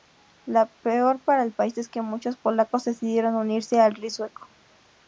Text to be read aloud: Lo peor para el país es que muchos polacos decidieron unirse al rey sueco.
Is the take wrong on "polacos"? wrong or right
right